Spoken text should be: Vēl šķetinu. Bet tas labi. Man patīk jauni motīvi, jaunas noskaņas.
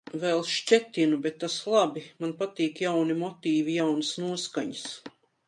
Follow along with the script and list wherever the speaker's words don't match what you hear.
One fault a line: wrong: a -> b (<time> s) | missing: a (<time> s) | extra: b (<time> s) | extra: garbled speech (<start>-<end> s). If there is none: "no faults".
no faults